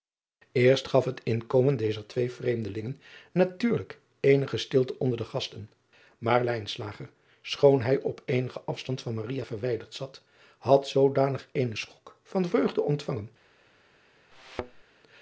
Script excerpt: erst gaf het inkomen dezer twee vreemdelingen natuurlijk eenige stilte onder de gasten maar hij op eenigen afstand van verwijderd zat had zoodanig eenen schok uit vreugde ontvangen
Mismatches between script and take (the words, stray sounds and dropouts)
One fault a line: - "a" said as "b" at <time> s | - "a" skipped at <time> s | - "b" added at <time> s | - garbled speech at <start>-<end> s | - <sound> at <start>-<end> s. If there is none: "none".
- "schoon" added at 7.4 s
- "uit" said as "van" at 12.2 s
- thud at 14.3-14.8 s